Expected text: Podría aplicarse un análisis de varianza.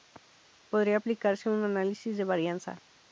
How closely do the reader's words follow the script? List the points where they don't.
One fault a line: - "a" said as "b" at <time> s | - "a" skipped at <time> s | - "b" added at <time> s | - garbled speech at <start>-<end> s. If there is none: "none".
none